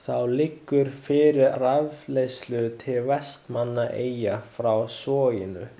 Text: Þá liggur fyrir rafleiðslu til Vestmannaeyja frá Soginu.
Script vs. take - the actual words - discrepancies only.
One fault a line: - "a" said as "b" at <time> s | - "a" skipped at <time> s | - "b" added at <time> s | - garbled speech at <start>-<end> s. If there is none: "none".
none